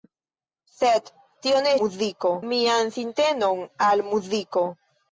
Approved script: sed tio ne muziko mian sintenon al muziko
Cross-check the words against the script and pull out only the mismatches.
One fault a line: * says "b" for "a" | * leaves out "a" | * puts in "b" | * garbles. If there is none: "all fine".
all fine